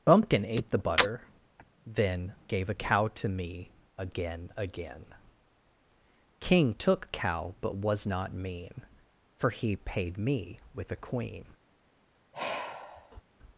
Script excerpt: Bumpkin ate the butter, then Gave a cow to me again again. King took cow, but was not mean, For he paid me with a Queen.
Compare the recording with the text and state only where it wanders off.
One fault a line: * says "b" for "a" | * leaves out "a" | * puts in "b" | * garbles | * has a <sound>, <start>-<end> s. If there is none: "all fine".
* has a sigh, 12.3-13.2 s